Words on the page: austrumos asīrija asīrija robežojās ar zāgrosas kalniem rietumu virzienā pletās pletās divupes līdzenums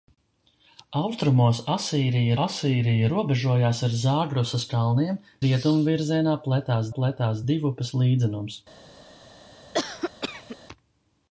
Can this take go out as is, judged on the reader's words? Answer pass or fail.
pass